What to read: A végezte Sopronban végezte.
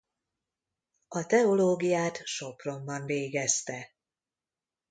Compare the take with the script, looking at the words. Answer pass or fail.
fail